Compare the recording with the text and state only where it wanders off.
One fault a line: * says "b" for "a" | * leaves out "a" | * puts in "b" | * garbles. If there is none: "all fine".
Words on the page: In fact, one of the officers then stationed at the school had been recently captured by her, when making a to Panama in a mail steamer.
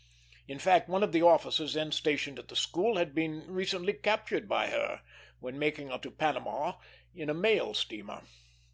all fine